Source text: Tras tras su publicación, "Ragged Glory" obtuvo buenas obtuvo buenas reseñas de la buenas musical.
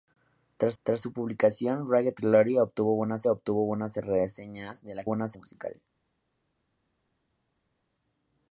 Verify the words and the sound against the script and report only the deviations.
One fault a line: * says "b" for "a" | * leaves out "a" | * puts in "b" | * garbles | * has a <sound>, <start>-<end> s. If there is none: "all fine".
all fine